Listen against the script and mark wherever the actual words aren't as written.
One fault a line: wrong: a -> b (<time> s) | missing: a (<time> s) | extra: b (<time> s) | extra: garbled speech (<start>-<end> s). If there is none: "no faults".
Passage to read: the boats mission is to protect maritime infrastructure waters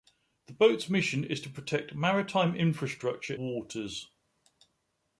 no faults